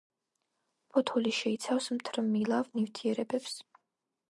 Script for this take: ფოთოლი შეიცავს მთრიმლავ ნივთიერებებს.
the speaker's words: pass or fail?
pass